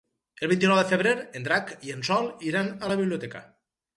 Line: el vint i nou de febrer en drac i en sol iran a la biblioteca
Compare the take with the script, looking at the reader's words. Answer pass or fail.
pass